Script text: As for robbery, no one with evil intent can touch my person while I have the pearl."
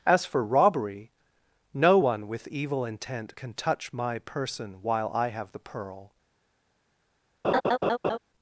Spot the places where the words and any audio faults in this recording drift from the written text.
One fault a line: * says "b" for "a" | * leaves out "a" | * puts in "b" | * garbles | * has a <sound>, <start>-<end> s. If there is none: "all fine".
* has a laugh, 7.4-8.2 s